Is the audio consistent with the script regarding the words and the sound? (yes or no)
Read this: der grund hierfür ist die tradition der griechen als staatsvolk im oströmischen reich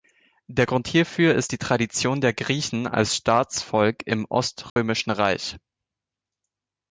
no